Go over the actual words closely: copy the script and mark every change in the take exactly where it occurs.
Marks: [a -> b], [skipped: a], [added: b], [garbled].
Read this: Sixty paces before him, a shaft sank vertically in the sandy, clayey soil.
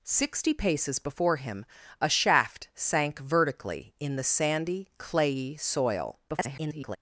Sixty paces before him, a shaft sank vertically in the sandy, clayey soil. [garbled]